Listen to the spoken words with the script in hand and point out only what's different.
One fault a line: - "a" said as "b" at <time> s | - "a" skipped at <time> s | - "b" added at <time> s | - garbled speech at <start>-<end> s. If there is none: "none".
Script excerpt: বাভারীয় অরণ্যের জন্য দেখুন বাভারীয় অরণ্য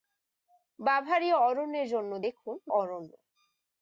- "বাভারীয়" skipped at 2.5 s